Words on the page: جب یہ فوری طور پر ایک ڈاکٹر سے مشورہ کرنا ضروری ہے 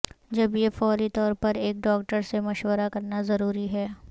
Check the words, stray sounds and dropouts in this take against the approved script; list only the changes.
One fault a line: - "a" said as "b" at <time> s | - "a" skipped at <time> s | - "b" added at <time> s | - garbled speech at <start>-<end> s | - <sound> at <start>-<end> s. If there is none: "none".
none